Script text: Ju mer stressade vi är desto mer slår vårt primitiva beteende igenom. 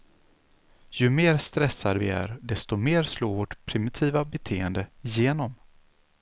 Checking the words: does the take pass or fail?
pass